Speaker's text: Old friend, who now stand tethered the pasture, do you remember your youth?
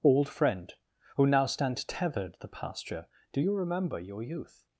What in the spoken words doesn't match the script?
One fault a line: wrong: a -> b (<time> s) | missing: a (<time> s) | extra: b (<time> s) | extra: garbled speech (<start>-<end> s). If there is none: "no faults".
no faults